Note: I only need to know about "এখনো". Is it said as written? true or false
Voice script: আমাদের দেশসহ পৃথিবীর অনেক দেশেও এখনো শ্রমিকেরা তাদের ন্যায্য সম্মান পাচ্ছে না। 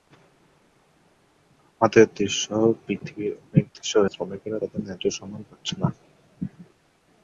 false